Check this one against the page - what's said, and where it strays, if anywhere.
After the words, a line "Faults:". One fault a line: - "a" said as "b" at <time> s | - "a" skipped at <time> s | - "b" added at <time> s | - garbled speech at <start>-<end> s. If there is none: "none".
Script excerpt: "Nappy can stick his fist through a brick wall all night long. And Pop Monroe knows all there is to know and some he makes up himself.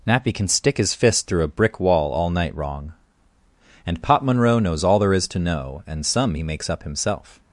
"Nappy can stick his fist through a brick wall all night wrong. And Pop Monroe knows all there is to know and some he makes up himself.
Faults:
- "long" said as "wrong" at 2.5 s